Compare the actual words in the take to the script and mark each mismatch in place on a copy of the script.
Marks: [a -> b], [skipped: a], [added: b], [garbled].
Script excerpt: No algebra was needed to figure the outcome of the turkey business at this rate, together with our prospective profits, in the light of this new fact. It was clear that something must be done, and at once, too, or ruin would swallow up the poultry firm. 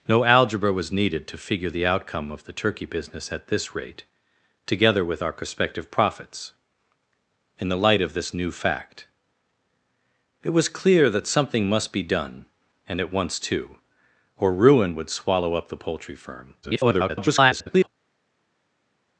No algebra was needed to figure the outcome of the turkey business at this rate, together with our prospective profits, in the light of this new fact. It was clear that something must be done, and at once, too, or ruin would swallow up the poultry firm. [garbled]